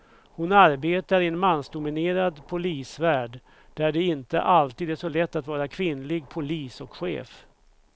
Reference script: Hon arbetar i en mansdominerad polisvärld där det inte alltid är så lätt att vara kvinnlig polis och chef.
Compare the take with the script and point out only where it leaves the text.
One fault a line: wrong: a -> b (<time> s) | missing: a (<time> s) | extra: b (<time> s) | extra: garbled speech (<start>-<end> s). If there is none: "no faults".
no faults